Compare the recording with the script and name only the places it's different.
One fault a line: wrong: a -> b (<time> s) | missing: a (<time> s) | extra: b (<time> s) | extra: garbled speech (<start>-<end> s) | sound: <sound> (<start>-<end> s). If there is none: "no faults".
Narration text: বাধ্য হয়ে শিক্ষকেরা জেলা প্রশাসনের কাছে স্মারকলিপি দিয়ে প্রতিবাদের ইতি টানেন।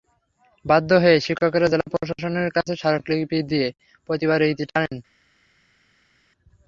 no faults